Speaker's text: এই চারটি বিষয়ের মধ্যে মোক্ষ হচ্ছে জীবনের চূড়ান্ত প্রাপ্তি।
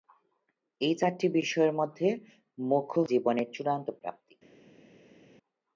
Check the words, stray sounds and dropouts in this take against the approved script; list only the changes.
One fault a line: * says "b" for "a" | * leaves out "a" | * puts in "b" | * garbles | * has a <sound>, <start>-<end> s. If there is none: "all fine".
* leaves out "হচ্ছে"